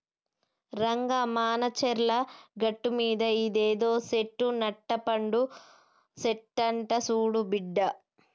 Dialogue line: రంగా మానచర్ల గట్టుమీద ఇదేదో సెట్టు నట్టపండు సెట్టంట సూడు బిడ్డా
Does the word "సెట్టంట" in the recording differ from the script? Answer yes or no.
no